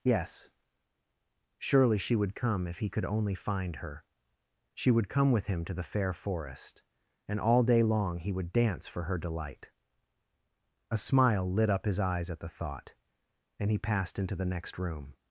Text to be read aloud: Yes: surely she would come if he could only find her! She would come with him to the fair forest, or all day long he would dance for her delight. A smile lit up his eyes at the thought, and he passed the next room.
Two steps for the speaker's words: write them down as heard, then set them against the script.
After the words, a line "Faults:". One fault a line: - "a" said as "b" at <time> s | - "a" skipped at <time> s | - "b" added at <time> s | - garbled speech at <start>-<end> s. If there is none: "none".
Yes: surely she would come if he could only find her! She would come with him to the fair forest, and all day long he would dance for her delight. A smile lit up his eyes at the thought, and he passed into the next room.
Faults:
- "or" said as "and" at 7.3 s
- "into" added at 14.2 s